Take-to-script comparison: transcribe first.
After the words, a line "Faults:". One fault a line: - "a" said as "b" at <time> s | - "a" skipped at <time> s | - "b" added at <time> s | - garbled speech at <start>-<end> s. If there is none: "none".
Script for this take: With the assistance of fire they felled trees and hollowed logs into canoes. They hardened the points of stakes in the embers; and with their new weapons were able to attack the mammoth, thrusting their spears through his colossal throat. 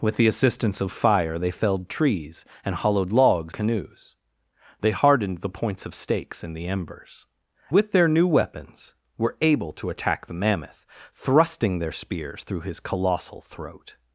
With the assistance of fire they felled trees and hollowed logs canoes. They hardened the points of stakes in the embers; with their new weapons were able to attack the mammoth, thrusting their spears through his colossal throat.
Faults:
- "into" skipped at 3.5 s
- "and" skipped at 7.3 s